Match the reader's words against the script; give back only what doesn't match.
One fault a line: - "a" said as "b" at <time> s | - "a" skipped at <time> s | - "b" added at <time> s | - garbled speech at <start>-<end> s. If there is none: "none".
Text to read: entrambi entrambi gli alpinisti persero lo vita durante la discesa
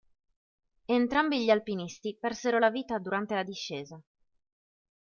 - "entrambi" skipped at 1.4 s
- "lo" said as "la" at 2.6 s